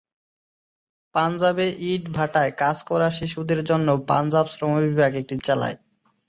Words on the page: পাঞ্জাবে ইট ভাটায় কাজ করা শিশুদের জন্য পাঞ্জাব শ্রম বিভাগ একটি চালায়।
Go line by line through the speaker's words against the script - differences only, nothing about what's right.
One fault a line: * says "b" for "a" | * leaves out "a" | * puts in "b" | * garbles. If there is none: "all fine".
all fine